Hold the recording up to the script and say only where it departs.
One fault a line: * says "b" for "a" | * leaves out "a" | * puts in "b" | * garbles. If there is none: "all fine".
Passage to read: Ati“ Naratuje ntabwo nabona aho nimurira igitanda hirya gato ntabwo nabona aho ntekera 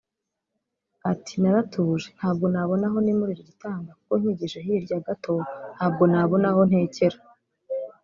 * puts in "kuko nkigije"